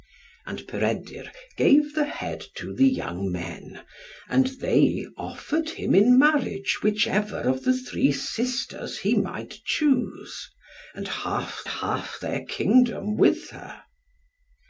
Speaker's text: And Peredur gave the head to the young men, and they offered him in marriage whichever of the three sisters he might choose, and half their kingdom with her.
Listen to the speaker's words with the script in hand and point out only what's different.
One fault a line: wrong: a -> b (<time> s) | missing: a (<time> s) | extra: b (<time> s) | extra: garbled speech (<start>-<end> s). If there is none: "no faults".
extra: half (11.7 s)